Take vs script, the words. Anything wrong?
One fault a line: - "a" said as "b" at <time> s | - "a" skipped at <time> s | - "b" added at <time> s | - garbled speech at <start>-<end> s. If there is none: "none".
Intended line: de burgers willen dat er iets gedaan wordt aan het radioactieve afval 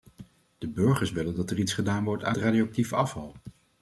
- "het" skipped at 2.4 s